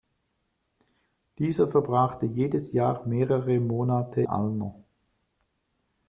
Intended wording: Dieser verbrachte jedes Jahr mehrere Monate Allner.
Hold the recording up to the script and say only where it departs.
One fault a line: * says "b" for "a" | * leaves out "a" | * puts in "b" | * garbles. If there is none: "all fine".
all fine